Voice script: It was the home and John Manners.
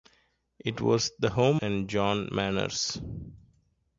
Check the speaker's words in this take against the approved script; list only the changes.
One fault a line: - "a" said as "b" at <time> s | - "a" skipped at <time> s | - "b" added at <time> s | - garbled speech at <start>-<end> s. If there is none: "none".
none